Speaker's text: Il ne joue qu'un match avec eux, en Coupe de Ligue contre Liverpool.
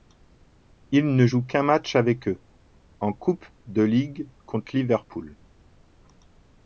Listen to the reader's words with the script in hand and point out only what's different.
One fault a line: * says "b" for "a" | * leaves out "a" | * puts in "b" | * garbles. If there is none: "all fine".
all fine